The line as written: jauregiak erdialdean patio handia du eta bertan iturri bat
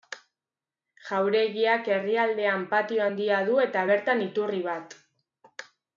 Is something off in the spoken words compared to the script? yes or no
no